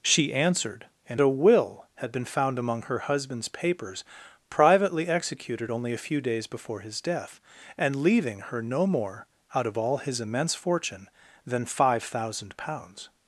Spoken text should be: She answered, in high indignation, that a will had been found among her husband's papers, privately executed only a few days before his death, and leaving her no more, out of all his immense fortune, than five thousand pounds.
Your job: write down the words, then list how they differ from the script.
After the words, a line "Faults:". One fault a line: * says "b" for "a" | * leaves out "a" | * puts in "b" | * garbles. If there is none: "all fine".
She answered, in a will had been found among her husband's papers, privately executed only a few days before his death, and leaving her no more, out of all his immense fortune, than five thousand pounds.
Faults:
* leaves out "high indignation that"